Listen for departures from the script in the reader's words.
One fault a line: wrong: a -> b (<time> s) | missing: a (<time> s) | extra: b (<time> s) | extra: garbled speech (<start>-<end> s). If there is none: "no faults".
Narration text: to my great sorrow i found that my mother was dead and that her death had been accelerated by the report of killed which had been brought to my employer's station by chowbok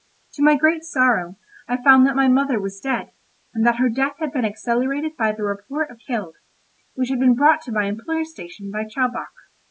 no faults